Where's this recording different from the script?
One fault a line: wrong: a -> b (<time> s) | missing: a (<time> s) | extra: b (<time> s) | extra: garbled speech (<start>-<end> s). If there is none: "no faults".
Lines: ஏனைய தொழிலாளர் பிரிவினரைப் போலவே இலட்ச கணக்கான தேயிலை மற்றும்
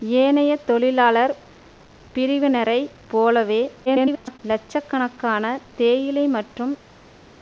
extra: garbled speech (3.9-4.4 s)